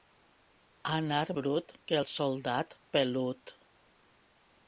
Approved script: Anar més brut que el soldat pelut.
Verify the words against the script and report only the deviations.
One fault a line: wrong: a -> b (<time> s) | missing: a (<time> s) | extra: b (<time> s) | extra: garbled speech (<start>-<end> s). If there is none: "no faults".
missing: més (1.2 s)